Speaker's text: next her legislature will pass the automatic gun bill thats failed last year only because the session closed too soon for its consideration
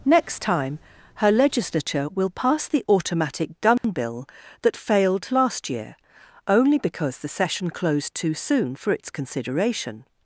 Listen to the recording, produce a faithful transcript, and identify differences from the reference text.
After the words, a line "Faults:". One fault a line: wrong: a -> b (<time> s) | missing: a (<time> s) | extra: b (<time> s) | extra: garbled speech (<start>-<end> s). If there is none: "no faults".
next time her legislature will pass the automatic gun bill that failed last year only because the session closed too soon for its consideration
Faults:
extra: time (0.4 s)
wrong: thats -> that (4.6 s)